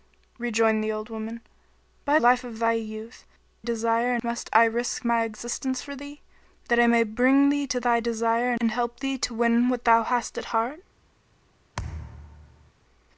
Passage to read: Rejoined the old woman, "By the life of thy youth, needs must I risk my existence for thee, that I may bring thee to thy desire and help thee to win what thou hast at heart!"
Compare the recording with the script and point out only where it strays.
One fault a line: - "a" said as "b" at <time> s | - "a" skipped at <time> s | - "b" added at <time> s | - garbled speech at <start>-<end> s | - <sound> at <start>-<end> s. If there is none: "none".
- "the" skipped at 2.2 s
- "needs" said as "desire" at 3.6 s
- thud at 11.7-12.7 s